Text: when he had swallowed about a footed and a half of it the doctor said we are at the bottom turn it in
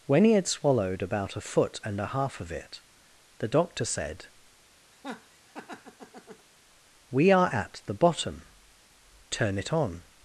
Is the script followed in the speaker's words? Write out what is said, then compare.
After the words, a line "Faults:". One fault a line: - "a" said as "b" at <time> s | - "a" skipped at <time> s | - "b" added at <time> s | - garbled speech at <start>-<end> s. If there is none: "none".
when he had swallowed about a foot and a half of it the doctor said we are at the bottom turn it on
Faults:
- "footed" said as "foot" at 1.4 s
- "in" said as "on" at 9.7 s